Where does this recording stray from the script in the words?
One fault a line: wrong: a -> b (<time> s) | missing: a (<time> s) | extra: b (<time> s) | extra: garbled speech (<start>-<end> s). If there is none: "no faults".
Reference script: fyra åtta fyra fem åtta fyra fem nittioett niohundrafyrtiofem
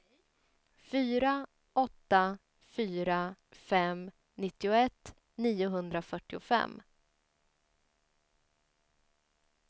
missing: åtta fyra fem (4.1 s)